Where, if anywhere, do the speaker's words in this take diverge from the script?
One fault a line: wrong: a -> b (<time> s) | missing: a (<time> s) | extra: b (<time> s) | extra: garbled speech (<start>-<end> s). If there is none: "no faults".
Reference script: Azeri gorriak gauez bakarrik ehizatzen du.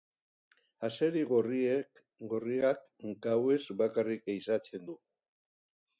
no faults